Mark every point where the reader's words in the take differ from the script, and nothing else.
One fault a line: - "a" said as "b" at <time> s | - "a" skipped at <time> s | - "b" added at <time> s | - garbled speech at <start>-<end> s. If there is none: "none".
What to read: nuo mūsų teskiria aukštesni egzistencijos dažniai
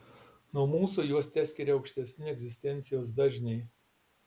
- "juos" added at 1.1 s